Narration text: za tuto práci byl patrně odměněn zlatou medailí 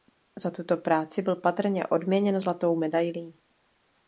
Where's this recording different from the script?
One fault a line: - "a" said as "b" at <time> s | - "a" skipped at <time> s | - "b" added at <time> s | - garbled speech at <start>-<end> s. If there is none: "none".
none